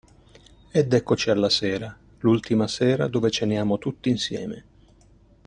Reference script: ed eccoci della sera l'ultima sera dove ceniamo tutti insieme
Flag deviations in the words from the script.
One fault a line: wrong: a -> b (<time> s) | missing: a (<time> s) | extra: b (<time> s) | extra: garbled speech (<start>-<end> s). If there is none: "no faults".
wrong: della -> alla (1.3 s)